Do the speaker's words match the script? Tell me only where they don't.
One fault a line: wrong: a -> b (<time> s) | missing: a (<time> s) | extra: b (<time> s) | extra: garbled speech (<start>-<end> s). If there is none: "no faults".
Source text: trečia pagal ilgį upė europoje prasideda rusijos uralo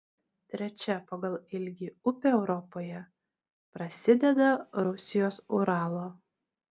no faults